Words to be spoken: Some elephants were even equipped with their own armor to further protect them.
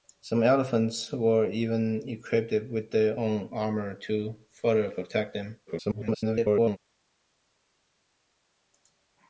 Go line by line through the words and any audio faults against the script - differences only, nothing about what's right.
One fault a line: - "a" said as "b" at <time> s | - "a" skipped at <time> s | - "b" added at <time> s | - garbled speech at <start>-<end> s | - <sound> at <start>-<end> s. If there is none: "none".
- garbled speech at 5.7-6.8 s